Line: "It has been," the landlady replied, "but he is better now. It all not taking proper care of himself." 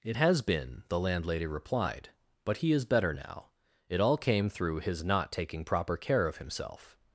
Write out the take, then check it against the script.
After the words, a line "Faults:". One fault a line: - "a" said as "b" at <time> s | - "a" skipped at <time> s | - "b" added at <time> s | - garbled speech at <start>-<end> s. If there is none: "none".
"It has been," the landlady replied, "but he is better now. It all came through his not taking proper care of himself."
Faults:
- "came through his" added at 4.2 s